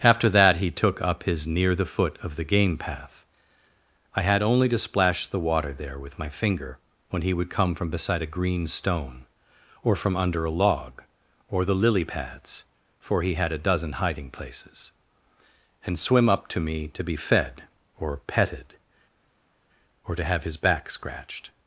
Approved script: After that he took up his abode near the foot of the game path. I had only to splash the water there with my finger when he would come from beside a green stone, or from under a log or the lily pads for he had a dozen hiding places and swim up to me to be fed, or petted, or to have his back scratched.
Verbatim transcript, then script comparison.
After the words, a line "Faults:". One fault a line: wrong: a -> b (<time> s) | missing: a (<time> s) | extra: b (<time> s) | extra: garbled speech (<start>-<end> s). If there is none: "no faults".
After that he took up his near the foot of the game path. I had only to splash the water there with my finger when he would come from beside a green stone, or from under a log or the lily pads for he had a dozen hiding places and swim up to me to be fed, or petted, or to have his back scratched.
Faults:
missing: abode (1.4 s)